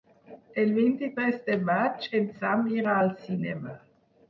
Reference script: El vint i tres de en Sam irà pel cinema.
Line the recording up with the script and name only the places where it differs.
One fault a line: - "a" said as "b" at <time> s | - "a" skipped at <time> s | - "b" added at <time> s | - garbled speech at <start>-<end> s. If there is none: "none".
- "maig" added at 1.7 s
- "pel" said as "al" at 3.0 s